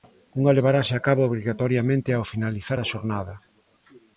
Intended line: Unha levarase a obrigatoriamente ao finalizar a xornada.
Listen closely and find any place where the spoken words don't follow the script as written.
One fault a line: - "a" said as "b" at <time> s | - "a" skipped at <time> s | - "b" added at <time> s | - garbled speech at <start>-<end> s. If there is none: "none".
- "cabo" added at 1.1 s